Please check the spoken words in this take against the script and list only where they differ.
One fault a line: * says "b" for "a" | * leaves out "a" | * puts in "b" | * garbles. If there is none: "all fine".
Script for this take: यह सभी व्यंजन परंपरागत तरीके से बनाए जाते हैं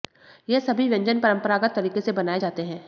all fine